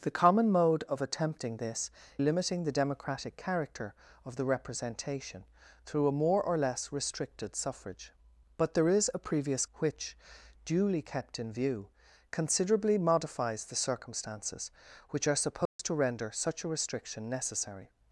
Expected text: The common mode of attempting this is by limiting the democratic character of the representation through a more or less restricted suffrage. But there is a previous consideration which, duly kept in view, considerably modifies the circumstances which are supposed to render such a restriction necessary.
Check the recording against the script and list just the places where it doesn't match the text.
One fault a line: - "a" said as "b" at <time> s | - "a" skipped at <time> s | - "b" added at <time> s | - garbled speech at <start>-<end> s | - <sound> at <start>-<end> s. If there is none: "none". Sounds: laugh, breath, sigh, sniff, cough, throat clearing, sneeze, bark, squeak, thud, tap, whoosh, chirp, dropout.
- "is by" skipped at 1.9 s
- "consideration" skipped at 9.7 s
- dropout at 15.7-15.8 s